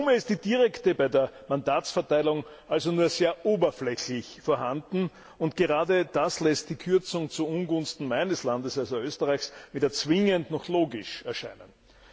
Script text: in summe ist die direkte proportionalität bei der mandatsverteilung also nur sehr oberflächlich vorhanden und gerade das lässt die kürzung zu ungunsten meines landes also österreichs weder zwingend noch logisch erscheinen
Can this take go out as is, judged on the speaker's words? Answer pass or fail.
fail